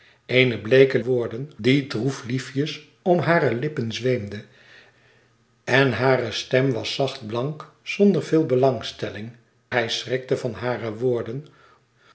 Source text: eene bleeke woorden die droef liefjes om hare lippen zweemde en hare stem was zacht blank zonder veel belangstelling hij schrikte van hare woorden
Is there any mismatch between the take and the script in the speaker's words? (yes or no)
no